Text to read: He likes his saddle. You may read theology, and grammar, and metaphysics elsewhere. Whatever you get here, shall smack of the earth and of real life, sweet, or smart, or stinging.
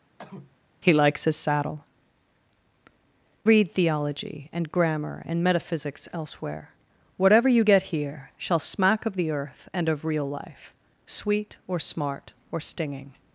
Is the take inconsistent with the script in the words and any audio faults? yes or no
yes